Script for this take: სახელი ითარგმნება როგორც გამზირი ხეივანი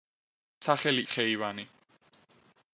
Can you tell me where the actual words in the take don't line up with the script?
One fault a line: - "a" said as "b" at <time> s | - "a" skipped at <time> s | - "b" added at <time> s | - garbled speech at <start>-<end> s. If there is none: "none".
- "ითარგმნება როგორც გამზირი" skipped at 1.0 s